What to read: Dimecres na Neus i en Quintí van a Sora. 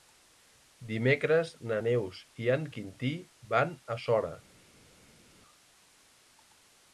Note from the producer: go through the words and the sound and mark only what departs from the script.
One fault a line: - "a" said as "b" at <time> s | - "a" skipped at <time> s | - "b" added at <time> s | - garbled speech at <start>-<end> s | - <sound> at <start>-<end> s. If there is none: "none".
none